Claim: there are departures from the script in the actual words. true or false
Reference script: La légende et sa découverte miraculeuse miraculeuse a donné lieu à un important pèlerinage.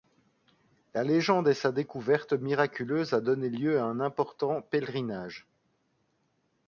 true